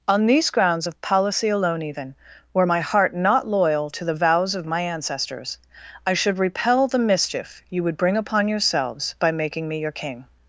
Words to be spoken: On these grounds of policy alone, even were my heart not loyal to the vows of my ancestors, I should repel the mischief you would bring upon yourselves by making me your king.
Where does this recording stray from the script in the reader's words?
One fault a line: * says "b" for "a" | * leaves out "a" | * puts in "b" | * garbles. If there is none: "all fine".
all fine